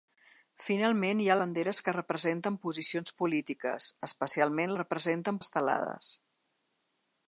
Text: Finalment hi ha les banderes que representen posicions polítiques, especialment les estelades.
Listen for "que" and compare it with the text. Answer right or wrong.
right